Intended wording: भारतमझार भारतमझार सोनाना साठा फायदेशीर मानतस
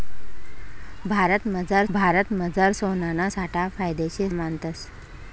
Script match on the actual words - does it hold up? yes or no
yes